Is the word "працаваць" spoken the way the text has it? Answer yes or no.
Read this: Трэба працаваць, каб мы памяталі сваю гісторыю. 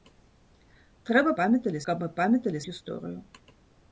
no